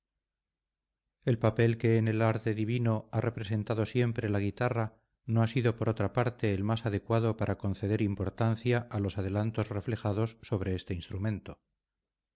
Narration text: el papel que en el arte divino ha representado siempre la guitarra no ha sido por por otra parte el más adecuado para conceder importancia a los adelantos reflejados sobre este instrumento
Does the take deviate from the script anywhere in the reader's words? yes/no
yes